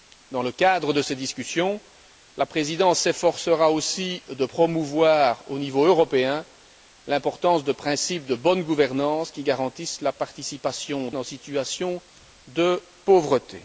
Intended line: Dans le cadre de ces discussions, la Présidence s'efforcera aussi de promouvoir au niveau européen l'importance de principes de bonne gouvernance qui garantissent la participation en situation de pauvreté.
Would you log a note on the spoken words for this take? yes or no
no